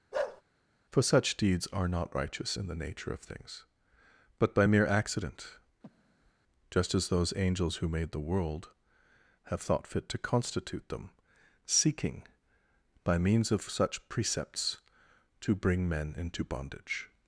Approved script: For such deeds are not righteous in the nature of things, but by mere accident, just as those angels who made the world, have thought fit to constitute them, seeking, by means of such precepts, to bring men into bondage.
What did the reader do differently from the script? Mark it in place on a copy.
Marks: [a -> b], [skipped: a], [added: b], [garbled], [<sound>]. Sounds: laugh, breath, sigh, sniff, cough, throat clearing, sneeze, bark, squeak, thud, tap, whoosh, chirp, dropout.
[bark] For such deeds are not righteous in the nature of things, but by mere accident, [breath] just as those angels who made the world, have thought fit to constitute them, seeking, by means of such precepts, to bring men into bondage.